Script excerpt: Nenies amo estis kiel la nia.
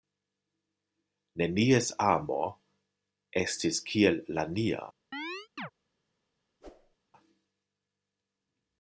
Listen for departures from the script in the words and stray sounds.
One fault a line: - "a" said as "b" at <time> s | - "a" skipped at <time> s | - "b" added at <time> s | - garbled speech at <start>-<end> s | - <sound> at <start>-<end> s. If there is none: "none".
- chirp at 5.1-5.7 s
- whoosh at 6.6-7.0 s